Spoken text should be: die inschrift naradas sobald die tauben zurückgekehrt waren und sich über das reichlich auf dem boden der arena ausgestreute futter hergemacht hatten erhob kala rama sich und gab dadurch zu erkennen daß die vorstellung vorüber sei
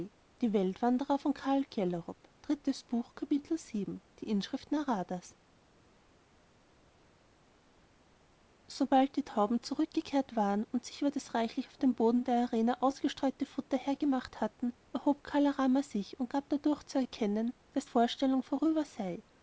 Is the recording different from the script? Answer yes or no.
yes